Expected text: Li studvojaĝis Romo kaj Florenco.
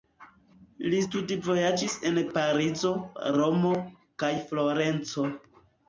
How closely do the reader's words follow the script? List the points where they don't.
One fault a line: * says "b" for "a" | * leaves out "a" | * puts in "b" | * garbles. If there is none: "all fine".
* puts in "en Parizo"